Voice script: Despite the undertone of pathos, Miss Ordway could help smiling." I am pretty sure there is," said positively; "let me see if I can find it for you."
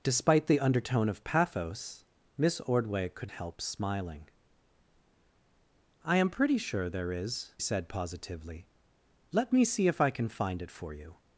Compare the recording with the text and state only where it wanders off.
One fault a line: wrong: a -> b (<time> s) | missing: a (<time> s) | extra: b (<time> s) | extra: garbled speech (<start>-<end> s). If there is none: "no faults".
no faults